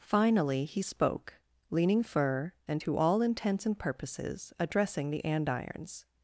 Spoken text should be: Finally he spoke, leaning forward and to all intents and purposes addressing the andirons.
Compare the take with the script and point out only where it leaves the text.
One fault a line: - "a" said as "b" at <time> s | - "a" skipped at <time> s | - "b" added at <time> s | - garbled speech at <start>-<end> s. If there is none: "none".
- "forward" said as "fur" at 2.0 s